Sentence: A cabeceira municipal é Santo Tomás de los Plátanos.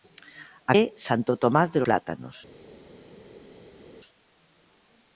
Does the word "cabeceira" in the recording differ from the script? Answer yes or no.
yes